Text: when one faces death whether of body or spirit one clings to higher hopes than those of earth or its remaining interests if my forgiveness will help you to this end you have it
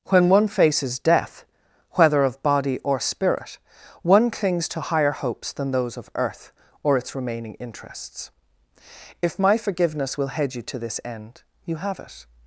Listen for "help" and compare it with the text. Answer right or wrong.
wrong